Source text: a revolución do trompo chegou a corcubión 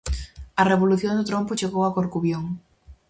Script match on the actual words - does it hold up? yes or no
yes